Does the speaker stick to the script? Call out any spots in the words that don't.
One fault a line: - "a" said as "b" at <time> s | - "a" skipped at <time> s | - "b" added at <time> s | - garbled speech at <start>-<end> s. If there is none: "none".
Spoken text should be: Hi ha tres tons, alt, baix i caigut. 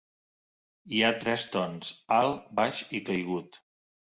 none